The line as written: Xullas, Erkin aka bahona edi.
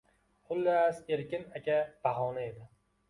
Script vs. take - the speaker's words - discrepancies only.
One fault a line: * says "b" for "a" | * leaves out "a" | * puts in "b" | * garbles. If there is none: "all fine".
all fine